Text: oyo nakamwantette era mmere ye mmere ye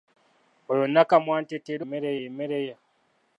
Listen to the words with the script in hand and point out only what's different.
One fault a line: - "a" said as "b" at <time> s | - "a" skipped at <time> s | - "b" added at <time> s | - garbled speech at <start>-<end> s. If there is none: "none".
none